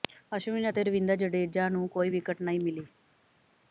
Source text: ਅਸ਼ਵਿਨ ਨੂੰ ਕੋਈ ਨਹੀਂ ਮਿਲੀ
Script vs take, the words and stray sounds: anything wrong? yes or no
yes